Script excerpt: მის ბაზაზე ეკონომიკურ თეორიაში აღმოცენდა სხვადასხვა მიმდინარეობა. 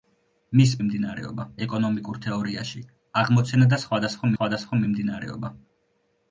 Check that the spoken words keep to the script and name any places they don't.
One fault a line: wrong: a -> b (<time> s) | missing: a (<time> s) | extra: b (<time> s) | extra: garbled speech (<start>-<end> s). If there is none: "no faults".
wrong: ბაზაზე -> მიმდინარეობა (0.8 s)
extra: სხვადასხვა (4.3 s)